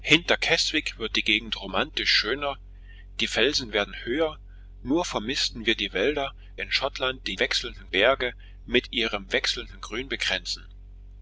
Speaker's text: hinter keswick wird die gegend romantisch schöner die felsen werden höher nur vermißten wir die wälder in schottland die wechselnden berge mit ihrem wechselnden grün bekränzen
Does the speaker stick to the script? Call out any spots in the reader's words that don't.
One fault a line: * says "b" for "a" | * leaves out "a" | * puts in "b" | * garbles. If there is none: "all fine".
all fine